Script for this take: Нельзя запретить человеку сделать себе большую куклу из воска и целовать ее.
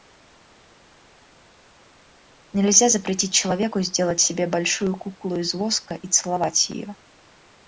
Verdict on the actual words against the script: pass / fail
pass